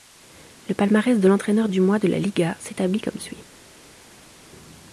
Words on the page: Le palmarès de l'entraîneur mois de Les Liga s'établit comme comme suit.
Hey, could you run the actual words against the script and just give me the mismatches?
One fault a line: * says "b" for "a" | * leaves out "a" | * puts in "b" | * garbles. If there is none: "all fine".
* puts in "du"
* says "La" for "Les"
* leaves out "comme"